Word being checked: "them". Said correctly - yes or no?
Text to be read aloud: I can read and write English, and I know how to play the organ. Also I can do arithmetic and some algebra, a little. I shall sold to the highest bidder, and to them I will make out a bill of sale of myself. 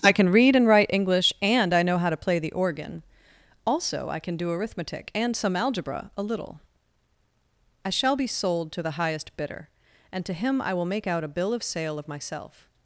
no